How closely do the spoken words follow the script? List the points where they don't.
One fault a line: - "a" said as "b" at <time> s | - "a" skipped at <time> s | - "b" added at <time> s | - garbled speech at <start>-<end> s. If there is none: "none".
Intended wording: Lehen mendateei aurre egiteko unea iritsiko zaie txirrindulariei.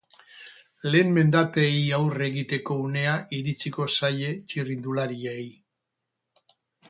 none